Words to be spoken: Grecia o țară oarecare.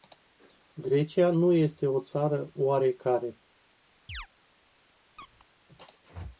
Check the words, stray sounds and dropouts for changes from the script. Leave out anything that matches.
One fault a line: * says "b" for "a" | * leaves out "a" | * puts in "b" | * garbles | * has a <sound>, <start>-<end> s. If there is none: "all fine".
* puts in "nu este"
* has a chirp, 4.1-4.3 s
* has a squeak, 5.2-5.5 s